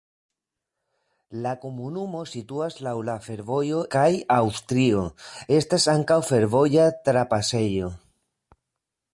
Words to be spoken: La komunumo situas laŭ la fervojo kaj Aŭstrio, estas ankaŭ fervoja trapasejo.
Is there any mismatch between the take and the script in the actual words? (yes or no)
no